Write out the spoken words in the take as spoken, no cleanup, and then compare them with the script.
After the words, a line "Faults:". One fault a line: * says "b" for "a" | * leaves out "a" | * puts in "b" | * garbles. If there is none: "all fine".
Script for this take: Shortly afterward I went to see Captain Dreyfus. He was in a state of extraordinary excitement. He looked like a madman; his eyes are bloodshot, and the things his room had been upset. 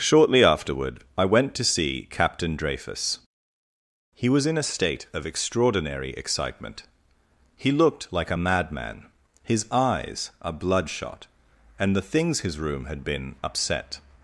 Shortly afterward I went to see Captain Dreyfus. He was in a state of extraordinary excitement. He looked like a madman; his eyes are bloodshot, and the things his room had been upset.
Faults:
all fine